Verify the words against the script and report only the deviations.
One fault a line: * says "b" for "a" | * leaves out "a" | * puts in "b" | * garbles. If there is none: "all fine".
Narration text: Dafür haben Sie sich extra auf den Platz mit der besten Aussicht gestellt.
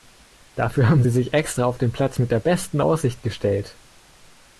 all fine